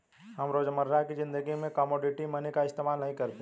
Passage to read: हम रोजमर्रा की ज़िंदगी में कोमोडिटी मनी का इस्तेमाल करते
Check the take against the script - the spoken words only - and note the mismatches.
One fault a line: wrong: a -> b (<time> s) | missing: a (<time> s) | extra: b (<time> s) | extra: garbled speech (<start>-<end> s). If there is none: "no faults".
extra: नहीं (3.0 s)